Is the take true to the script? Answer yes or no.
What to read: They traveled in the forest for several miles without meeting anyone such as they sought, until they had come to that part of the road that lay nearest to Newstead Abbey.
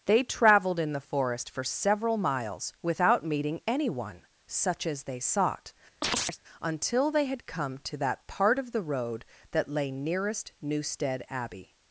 no